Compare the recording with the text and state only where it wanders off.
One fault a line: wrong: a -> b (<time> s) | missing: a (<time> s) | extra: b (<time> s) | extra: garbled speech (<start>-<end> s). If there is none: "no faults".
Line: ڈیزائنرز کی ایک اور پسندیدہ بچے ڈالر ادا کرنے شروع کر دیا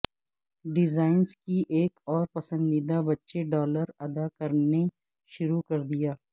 no faults